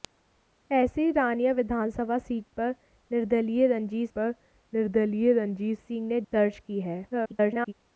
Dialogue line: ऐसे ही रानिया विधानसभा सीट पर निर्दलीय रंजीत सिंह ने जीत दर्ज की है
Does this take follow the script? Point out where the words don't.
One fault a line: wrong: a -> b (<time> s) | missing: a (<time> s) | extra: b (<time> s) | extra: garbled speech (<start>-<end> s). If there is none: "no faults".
extra: पर निर्दलीय रंजीत (4.2 s)
missing: जीत (6.2 s)
extra: garbled speech (7.1-7.7 s)